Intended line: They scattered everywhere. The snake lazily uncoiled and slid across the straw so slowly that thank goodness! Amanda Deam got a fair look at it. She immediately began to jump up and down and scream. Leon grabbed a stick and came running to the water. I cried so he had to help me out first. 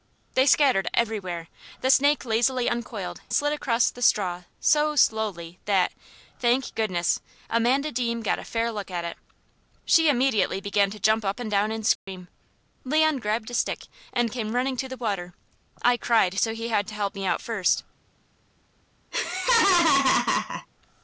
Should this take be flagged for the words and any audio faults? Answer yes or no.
yes